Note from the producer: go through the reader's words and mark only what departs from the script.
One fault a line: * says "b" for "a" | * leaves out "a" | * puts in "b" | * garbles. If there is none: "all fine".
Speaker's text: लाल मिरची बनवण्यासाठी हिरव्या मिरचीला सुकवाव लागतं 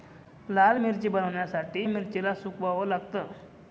* leaves out "हिरव्या"